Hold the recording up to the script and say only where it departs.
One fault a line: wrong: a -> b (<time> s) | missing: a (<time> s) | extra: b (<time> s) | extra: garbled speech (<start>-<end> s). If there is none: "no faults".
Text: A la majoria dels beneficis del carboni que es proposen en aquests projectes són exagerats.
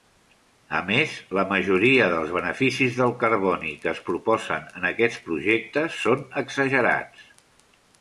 extra: més (0.9 s)